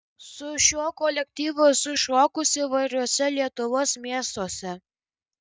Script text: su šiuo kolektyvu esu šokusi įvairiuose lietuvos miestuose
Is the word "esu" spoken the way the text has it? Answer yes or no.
yes